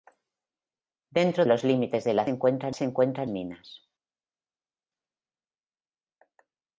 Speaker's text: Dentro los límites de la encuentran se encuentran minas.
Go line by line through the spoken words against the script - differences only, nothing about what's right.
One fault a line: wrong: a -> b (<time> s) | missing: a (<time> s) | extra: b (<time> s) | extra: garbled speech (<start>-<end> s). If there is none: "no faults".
no faults